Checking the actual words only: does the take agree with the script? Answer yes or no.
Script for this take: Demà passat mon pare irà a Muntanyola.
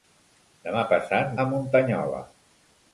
no